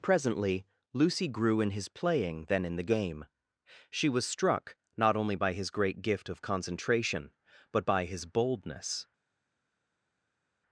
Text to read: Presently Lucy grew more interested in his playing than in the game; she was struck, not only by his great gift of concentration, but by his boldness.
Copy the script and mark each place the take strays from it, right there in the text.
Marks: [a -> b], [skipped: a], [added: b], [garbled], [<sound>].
Presently Lucy grew [skipped: more interested] in his playing than in the game; she was struck, not only by his great gift of concentration, but by his boldness.